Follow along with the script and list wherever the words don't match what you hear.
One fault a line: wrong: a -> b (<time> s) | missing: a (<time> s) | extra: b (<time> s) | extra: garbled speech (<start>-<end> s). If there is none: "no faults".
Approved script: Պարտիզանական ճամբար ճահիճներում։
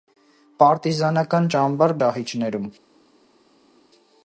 no faults